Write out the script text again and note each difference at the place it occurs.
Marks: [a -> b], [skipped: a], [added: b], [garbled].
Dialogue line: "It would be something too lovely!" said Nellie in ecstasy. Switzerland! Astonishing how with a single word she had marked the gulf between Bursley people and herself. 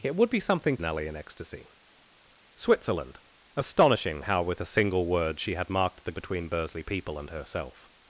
"It would be something [skipped: too lovely!" said] Nellie in ecstasy. Switzerland! Astonishing how with a single word she had marked the [skipped: gulf] between Bursley people and herself.